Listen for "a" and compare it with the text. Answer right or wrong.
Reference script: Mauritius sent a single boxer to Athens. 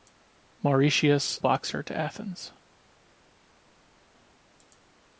wrong